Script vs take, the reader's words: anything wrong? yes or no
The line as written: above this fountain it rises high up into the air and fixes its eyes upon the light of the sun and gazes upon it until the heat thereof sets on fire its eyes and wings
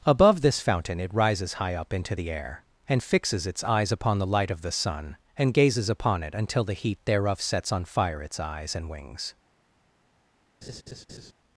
no